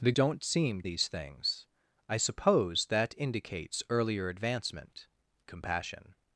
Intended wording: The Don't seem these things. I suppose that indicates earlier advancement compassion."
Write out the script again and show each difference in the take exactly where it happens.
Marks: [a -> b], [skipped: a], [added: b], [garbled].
The Don't seem these things. I suppose that indicates earlier advancement compassion."